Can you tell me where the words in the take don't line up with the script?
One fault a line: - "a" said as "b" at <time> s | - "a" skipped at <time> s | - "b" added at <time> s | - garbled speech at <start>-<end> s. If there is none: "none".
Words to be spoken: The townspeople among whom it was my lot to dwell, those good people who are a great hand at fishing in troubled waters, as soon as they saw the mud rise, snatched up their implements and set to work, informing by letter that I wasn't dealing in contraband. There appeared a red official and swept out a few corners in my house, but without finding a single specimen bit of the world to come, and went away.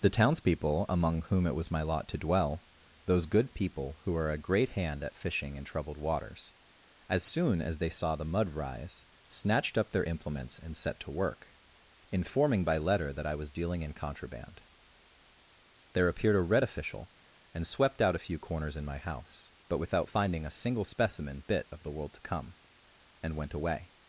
- "wasn't" said as "was" at 13.4 s